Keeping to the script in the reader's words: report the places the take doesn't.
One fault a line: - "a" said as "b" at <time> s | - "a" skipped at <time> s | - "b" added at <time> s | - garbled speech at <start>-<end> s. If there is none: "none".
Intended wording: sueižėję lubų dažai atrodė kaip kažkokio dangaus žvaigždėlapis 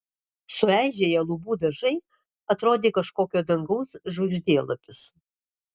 - "kaip" skipped at 2.9 s